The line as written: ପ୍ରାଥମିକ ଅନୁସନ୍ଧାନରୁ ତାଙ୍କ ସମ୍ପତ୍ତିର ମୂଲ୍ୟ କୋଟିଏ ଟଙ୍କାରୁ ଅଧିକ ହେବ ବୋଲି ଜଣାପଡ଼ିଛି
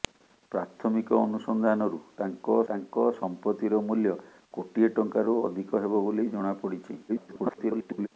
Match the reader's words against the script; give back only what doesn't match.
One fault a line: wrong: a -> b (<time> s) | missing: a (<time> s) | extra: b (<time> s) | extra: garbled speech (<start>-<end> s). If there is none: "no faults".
extra: ତାଙ୍କ (2.7 s)
extra: garbled speech (7.1-8.1 s)